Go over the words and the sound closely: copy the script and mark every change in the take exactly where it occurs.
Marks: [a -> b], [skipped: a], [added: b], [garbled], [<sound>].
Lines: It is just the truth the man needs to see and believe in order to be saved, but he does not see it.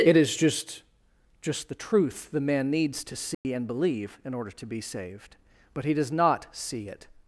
It is just [added: just] the truth the man needs to see [dropout] and believe in order to be saved, but he does not see it.